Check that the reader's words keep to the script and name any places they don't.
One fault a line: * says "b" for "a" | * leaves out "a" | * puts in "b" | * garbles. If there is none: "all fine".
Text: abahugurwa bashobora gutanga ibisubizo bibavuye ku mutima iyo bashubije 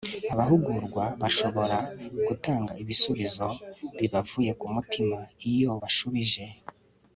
all fine